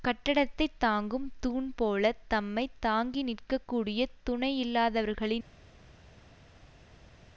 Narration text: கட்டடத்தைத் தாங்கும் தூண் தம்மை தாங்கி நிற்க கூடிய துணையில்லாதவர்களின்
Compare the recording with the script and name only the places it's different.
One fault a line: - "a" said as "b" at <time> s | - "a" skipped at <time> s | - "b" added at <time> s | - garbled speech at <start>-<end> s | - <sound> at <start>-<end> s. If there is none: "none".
- "போல" added at 1.8 s